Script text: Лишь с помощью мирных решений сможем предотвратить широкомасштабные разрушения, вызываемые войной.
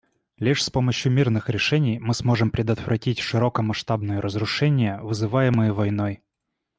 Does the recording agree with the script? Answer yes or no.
no